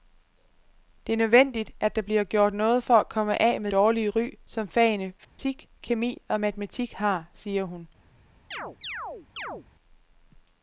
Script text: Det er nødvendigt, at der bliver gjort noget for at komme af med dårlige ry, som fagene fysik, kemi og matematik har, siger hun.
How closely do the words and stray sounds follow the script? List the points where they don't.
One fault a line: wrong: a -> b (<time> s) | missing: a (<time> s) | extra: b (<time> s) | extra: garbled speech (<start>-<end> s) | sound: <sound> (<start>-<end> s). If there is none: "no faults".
sound: dropout (5.2-5.4 s)
sound: chirp (8.5-9.7 s)